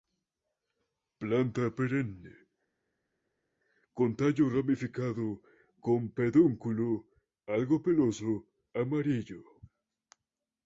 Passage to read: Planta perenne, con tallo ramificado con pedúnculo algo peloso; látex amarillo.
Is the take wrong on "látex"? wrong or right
wrong